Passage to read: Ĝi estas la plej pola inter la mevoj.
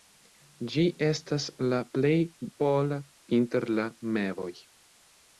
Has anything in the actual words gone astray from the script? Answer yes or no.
no